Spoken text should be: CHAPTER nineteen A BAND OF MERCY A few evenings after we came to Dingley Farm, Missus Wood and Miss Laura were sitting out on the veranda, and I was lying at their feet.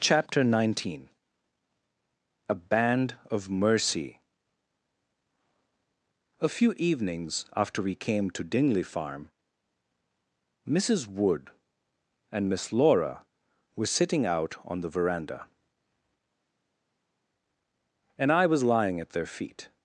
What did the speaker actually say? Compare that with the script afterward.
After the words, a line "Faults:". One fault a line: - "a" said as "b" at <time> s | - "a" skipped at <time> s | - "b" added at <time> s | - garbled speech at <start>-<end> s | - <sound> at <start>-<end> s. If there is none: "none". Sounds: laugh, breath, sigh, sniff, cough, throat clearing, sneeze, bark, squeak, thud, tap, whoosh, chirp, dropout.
CHAPTER nineteen A BAND OF MERCY A few evenings after we came to Dingley Farm, Missus Wood and Miss Laura were sitting out on the veranda, and I was lying at their feet.
Faults:
none